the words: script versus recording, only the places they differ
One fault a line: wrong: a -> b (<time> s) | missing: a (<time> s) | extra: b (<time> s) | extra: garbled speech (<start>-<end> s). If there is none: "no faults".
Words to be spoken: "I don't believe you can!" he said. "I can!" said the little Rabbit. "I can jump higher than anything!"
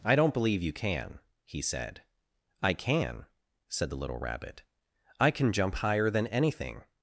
no faults